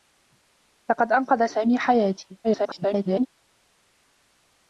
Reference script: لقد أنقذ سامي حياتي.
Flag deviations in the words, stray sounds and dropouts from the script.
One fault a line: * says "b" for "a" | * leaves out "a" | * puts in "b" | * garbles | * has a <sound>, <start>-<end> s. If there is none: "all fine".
* garbles